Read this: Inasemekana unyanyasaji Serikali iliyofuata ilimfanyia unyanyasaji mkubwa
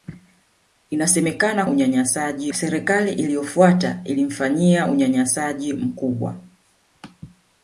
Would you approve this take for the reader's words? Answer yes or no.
yes